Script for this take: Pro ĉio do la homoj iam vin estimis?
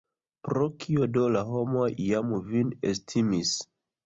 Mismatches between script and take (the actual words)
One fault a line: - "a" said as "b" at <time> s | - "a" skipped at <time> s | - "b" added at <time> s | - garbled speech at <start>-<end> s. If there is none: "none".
- "ĉio" said as "kio" at 0.8 s